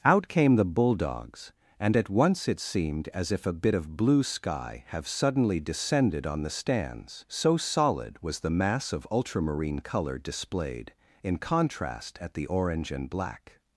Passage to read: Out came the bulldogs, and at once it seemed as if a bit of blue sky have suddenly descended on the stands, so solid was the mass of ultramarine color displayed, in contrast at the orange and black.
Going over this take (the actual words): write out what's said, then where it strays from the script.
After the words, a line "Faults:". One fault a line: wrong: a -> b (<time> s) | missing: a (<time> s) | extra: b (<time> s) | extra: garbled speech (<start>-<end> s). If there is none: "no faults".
Out came the bulldogs, and at once it seemed as if a bit of blue sky have suddenly descended on the stands, so solid was the mass of ultramarine color displayed, in contrast at the orange and black.
Faults:
no faults